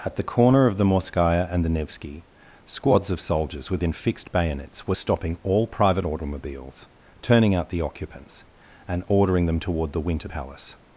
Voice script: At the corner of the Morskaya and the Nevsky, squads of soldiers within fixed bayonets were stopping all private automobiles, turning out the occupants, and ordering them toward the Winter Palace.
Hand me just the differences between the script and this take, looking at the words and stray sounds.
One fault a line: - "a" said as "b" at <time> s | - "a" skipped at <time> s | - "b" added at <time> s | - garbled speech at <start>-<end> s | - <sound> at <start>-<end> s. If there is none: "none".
none